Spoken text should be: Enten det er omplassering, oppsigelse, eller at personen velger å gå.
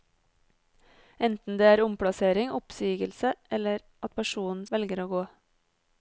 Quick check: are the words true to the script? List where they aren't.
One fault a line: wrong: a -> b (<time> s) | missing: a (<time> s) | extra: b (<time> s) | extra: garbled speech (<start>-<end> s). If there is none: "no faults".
no faults